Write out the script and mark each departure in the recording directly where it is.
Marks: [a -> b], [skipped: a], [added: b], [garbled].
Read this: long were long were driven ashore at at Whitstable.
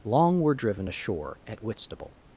long were [skipped: long were] driven ashore at [skipped: at] Whitstable.